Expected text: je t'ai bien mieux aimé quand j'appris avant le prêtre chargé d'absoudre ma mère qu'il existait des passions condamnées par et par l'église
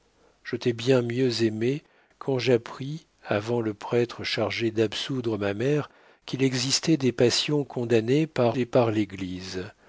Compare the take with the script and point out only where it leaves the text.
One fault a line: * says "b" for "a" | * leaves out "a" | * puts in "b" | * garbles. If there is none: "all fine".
all fine